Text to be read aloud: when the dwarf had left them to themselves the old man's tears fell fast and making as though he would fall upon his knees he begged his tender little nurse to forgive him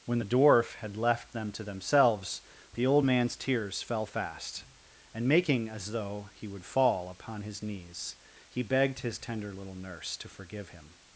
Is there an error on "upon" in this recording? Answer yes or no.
no